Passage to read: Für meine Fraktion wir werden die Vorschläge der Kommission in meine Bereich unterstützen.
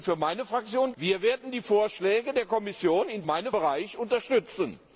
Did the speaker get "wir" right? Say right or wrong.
right